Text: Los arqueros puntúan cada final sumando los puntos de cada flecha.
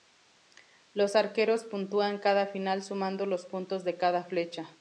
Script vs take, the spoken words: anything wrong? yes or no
no